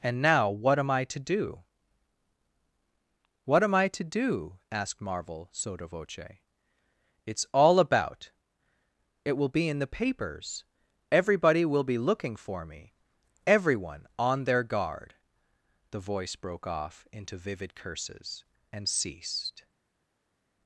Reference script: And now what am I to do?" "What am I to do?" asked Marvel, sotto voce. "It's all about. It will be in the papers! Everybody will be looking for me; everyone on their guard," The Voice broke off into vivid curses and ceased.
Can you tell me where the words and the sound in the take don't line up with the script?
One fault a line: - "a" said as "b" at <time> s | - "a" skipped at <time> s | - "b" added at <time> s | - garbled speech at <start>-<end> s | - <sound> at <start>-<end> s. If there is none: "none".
none